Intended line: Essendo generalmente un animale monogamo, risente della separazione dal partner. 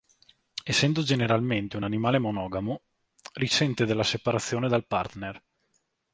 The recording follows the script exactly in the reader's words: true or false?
true